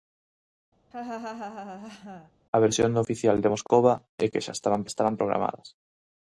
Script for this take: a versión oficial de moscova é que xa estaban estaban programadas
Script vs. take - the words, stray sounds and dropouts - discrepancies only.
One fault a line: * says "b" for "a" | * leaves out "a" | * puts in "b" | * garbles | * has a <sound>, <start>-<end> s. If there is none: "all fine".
* has a laugh, 0.9-2.3 s